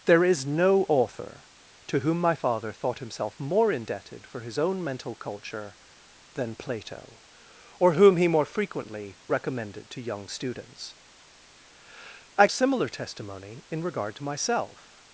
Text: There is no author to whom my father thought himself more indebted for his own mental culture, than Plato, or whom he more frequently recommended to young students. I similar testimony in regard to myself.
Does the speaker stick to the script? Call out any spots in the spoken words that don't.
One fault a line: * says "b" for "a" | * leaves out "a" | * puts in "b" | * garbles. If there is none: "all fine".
all fine